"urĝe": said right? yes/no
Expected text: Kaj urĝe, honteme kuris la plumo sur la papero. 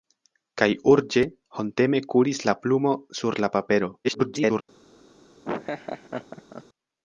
yes